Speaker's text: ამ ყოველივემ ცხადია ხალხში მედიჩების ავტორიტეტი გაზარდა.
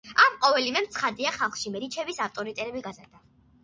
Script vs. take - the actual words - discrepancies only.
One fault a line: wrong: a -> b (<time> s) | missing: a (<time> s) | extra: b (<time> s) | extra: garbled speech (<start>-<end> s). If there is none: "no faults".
no faults